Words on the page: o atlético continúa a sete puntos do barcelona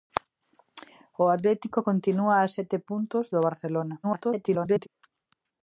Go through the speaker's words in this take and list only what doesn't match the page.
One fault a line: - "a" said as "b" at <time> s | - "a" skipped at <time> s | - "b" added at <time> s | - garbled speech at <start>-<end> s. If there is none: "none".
- garbled speech at 4.0-4.9 s